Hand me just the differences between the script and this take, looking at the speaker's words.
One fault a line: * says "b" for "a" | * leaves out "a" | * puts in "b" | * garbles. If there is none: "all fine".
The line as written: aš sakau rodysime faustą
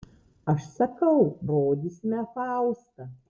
all fine